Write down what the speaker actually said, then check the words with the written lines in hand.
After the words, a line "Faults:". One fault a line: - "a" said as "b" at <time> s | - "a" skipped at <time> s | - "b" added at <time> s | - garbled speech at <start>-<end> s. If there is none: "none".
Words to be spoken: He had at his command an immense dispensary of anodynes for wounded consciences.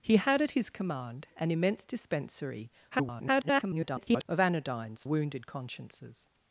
He had at his command an immense dispensary [garbled] of anodynes wounded consciences.
Faults:
- garbled speech at 2.9-4.3 s
- "for" skipped at 5.0 s